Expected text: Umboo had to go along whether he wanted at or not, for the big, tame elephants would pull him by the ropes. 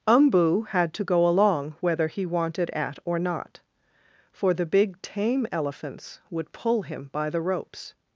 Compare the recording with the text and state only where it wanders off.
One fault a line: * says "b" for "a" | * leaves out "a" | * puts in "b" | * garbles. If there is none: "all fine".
all fine